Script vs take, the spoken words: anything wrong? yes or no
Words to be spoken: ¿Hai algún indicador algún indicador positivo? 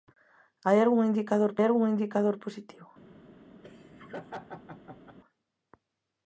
no